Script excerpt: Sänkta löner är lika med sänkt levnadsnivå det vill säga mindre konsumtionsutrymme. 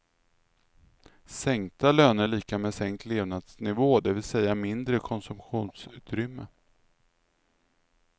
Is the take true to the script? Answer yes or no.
yes